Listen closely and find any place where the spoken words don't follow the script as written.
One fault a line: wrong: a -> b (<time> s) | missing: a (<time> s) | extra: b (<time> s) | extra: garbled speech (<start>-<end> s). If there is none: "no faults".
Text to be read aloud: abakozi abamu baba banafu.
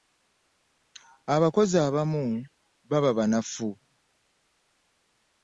no faults